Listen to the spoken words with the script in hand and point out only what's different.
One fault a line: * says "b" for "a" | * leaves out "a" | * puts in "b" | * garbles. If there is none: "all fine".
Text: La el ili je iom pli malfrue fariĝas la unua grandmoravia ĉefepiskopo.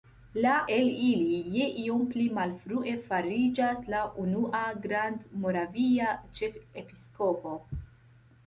all fine